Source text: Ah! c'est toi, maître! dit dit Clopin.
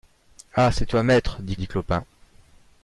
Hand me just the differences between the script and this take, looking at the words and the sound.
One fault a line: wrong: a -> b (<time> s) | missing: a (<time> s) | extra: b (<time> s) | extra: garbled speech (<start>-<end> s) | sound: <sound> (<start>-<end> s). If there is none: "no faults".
no faults